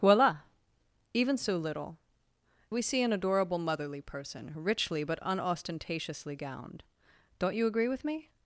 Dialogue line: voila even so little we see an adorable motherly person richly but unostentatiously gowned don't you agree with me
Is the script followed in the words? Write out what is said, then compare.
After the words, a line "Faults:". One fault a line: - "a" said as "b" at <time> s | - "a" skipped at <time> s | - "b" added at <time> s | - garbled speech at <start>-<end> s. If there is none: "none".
voila even so little we see an adorable motherly person richly but unostentatiously gowned don't you agree with me
Faults:
none